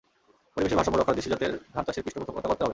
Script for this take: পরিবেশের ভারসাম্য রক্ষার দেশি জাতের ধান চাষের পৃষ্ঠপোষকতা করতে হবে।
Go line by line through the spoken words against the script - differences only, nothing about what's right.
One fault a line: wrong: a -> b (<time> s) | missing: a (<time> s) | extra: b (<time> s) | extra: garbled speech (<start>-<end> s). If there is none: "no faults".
no faults